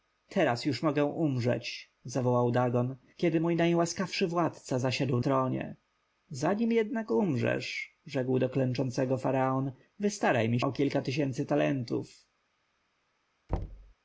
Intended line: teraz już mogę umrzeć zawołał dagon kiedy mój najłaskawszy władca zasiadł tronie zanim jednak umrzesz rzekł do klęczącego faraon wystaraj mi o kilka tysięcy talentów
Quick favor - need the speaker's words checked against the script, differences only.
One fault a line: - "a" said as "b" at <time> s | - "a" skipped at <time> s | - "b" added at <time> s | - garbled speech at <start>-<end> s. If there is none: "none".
none